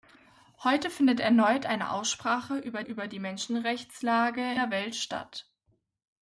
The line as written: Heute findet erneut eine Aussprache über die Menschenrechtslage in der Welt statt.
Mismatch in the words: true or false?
true